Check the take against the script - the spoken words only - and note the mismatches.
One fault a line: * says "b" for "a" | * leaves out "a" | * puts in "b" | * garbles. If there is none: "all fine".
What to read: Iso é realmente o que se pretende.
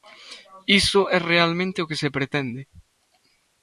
all fine